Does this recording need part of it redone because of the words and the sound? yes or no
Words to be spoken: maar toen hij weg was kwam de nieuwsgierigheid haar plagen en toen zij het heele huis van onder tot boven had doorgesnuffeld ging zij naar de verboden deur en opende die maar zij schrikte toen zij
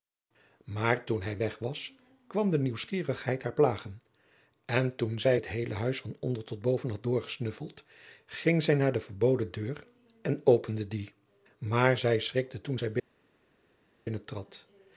no